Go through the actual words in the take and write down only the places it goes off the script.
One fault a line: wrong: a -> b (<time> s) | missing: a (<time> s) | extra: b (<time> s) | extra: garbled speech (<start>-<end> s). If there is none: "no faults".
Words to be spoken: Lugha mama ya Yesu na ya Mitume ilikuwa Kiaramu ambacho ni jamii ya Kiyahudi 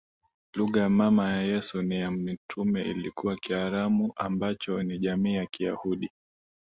no faults